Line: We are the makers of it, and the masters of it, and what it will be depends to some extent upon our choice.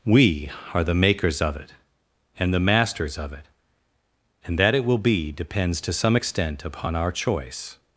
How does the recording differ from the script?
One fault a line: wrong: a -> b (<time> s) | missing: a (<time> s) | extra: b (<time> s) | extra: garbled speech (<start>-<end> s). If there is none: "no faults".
wrong: what -> that (4.6 s)